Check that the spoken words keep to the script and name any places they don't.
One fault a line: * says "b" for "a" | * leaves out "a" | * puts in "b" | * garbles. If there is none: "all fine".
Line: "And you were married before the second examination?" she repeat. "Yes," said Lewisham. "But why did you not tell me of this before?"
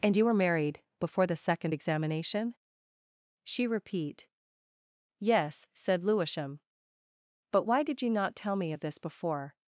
all fine